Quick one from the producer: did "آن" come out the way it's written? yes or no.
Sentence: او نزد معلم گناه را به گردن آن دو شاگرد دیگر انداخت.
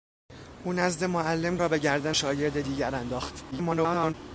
no